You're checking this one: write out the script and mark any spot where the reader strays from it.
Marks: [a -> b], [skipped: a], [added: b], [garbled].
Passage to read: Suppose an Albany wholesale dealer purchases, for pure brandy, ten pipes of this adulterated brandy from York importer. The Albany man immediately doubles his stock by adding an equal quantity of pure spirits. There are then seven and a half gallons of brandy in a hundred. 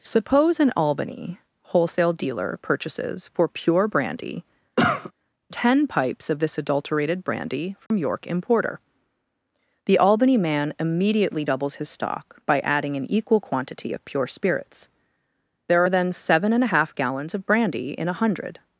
Suppose an Albany wholesale dealer purchases, for pure brandy, ten pipes of this adulterated brandy from York importer. The Albany man immediately doubles his stock by adding an equal quantity of pure spirits. There are then seven and a half gallons of brandy in a hundred.